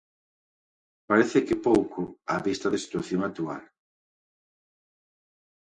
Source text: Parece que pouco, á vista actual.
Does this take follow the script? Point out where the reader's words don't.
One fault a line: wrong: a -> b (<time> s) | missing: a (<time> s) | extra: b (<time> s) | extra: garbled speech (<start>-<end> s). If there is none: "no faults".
extra: da situación (2.7 s)